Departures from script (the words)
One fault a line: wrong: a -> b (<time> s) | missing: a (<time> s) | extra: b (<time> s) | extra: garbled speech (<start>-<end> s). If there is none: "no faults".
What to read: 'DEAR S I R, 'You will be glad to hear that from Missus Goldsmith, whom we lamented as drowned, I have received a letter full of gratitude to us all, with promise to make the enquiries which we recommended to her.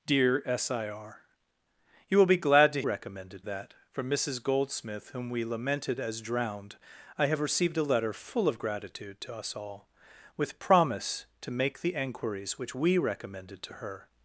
wrong: hear -> recommended (2.8 s)